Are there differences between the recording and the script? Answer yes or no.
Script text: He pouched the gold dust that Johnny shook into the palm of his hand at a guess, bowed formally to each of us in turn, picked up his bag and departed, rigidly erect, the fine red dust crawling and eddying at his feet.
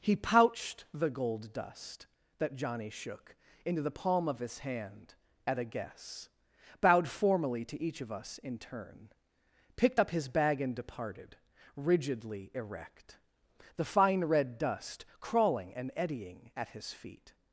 no